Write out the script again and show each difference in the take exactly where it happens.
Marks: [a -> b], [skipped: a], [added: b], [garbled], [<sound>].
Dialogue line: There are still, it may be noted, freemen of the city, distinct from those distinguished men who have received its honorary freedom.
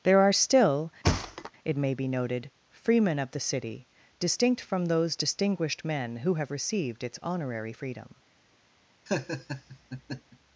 There are still, [thud] it may be noted, freemen of the city, distinct from those distinguished men who have received its honorary freedom. [laugh]